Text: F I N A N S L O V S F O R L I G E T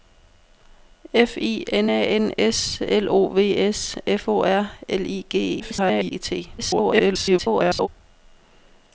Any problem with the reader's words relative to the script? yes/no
yes